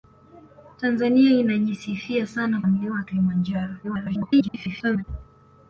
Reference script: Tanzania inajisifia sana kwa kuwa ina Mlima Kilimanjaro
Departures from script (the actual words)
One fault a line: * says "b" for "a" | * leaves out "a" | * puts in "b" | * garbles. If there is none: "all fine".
* leaves out "kwa kuwa ina"
* garbles